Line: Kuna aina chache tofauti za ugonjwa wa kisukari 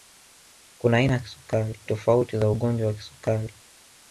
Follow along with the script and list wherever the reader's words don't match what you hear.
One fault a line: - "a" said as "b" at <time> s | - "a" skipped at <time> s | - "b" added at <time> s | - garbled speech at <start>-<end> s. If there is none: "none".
- "chache" said as "kisukari" at 1.2 s